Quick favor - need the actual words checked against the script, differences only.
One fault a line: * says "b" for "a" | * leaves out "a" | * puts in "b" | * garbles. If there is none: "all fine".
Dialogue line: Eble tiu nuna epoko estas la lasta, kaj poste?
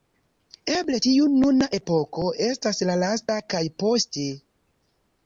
all fine